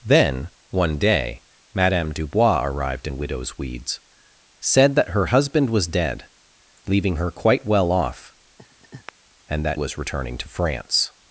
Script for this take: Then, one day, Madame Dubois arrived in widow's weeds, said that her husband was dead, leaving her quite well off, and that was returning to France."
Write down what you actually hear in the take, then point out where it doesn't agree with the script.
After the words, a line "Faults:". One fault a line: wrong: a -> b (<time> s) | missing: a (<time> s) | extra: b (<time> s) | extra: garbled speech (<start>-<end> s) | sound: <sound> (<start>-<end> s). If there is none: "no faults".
Then, one day, Madame Dubois arrived in widow's weeds, said that her husband was dead, leaving her quite well off, and that was returning to France."
Faults:
sound: laugh (8.6-9.1 s)